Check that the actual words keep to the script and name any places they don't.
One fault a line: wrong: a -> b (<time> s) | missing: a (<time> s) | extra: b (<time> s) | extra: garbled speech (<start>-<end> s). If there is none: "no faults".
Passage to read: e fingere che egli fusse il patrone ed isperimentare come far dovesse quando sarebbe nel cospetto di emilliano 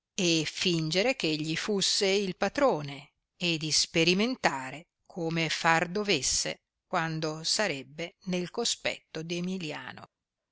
no faults